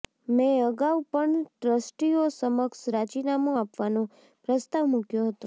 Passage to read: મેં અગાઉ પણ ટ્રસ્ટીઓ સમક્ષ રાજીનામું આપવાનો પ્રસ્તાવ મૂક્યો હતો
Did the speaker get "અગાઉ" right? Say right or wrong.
right